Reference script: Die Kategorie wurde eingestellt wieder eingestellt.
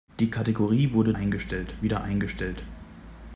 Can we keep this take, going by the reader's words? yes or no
yes